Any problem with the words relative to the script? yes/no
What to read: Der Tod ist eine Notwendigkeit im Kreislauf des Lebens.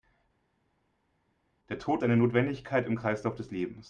yes